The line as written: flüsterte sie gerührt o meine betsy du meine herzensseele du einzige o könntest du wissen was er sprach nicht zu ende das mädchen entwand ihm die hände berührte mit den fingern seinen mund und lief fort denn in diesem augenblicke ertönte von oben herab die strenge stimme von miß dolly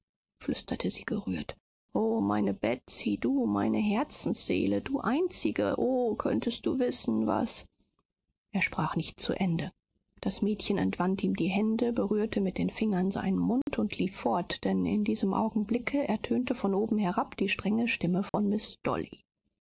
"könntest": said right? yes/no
yes